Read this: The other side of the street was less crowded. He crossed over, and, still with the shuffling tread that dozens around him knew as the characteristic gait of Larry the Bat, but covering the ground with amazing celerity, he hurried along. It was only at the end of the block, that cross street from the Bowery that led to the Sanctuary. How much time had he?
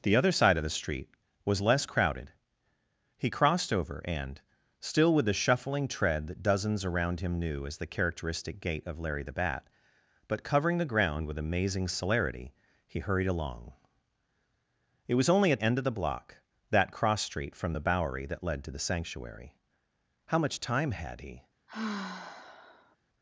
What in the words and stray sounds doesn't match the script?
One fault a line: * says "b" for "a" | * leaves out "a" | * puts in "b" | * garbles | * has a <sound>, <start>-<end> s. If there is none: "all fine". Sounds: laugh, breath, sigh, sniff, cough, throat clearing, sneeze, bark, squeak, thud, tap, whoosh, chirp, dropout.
* leaves out "the"
* has a sigh, 21.7-23.0 s